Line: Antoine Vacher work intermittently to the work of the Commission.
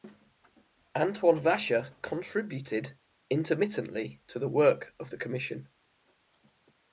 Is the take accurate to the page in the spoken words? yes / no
no